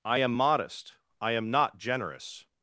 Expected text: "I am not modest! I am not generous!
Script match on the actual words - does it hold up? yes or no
no